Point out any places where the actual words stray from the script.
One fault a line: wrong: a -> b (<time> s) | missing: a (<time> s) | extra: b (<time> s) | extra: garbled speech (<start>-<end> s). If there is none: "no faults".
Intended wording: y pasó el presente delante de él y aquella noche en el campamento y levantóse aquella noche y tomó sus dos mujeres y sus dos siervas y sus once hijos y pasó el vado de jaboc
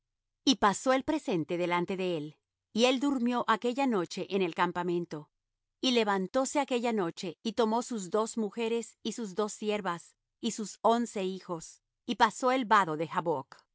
extra: él durmió (2.9 s)